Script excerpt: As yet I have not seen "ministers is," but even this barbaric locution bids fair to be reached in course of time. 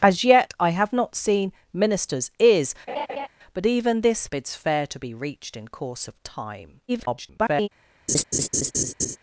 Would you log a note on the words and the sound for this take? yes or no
yes